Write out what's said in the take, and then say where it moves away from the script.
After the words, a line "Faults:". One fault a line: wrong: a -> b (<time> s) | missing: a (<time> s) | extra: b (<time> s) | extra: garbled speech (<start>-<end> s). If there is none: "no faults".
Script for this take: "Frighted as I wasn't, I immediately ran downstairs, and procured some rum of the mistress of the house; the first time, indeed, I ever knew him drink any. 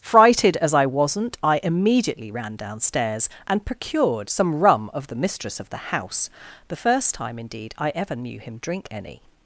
"Frighted as I wasn't, I immediately ran downstairs, and procured some rum of the mistress of the house; the first time, indeed, I ever knew him drink any.
Faults:
no faults